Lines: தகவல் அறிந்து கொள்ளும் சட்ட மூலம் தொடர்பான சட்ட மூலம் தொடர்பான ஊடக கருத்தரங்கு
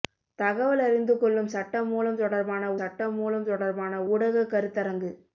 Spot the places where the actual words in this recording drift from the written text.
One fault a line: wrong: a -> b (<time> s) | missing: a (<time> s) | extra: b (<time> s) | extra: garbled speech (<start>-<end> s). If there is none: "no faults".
no faults